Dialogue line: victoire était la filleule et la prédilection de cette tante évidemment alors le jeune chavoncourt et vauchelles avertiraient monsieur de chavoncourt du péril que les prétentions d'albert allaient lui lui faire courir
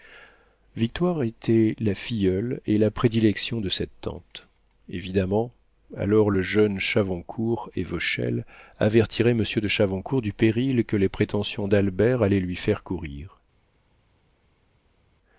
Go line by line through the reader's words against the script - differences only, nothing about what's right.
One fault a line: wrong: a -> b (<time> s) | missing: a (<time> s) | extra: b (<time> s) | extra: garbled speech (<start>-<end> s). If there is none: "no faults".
missing: lui (12.6 s)